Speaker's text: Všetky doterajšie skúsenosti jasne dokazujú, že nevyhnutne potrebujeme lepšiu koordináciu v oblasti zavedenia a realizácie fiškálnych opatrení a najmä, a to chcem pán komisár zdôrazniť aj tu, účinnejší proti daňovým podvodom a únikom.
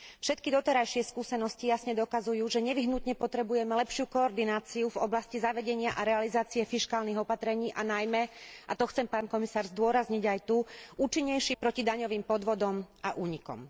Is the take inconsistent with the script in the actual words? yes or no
no